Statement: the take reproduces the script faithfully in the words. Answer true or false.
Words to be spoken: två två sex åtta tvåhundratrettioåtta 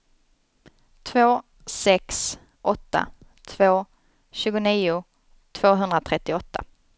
false